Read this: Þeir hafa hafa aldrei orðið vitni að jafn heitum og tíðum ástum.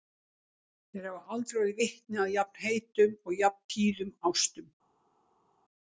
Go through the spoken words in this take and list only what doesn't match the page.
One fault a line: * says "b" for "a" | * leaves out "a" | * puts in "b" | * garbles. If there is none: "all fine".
* leaves out "hafa"
* puts in "jafn"